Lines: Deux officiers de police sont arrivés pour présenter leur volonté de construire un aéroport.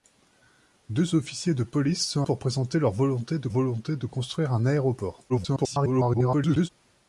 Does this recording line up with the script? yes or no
no